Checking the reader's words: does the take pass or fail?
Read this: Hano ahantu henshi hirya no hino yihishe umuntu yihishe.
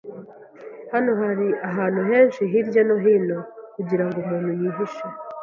fail